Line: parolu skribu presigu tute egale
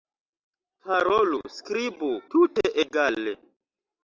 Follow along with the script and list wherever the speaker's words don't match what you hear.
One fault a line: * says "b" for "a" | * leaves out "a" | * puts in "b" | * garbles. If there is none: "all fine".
* leaves out "presigu"